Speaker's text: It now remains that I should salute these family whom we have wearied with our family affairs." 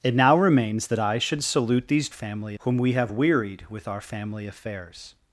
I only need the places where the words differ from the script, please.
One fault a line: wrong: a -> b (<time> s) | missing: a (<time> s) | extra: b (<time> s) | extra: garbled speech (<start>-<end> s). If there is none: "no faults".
no faults